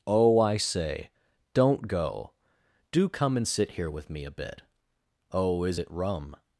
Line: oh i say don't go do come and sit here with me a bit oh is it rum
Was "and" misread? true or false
false